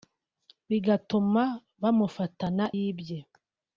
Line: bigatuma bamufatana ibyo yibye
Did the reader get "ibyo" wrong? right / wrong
wrong